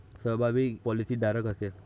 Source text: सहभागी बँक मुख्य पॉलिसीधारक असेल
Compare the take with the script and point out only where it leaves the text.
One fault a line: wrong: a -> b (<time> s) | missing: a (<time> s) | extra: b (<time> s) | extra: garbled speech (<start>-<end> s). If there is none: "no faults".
missing: बँक मुख्य (0.7 s)